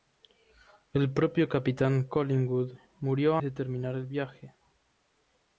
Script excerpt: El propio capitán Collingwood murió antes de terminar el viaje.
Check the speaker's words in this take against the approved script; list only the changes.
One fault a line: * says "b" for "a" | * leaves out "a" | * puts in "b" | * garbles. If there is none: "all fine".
* leaves out "antes"